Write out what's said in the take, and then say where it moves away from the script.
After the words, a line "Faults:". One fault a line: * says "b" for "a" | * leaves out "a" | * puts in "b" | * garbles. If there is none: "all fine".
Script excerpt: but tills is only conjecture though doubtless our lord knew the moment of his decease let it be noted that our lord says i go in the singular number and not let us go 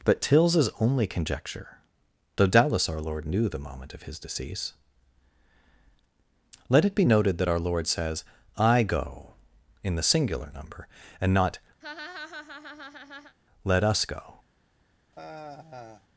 but tills is only conjecture though doubtless our lord knew the moment of his decease let it be noted that our lord says i go in the singular number and not let us go
Faults:
all fine